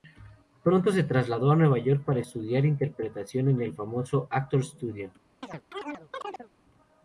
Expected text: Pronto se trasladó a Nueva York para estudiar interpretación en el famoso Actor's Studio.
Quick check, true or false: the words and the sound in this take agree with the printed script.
false